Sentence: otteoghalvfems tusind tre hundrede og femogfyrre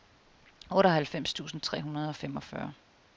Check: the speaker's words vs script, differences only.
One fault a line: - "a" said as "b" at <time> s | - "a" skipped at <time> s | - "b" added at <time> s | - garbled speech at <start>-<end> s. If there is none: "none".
none